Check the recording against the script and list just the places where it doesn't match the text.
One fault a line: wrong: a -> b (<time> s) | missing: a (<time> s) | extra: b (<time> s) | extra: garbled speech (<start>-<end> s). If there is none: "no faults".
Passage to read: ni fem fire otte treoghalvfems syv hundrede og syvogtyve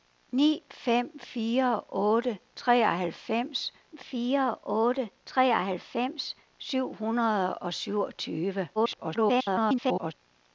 extra: fire otte treoghalvfems (4.0 s)
extra: garbled speech (8.8-10.1 s)